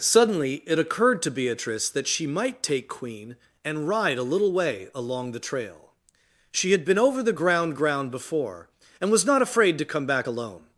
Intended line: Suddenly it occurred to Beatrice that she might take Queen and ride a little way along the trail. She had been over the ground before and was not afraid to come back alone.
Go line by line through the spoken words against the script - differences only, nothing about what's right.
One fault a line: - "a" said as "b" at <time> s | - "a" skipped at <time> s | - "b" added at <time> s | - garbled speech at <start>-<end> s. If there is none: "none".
- "ground" added at 7.8 s